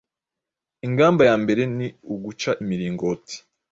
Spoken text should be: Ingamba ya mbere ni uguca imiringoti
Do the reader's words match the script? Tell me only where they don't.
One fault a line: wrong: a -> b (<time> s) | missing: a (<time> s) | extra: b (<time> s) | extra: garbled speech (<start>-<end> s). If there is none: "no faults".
no faults